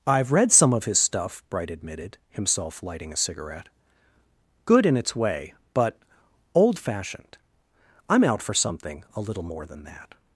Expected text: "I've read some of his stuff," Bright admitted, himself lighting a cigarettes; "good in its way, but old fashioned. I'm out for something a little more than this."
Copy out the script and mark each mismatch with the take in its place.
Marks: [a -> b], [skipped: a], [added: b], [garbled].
"I've read some of his stuff," Bright admitted, himself lighting a [cigarettes; -> cigarette] "good in its way, but old fashioned. I'm out for something a little more than [this." -> that]